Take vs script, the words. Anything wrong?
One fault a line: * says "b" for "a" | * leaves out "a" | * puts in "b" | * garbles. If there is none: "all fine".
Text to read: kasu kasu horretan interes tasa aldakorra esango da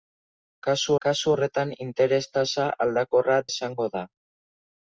all fine